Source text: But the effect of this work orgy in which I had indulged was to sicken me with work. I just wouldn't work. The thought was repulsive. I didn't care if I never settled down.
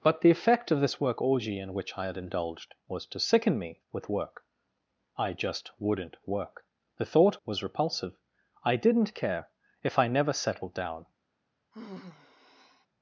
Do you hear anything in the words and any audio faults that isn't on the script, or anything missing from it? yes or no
yes